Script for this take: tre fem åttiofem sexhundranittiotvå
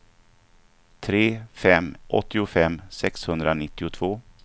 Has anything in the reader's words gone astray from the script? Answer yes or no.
no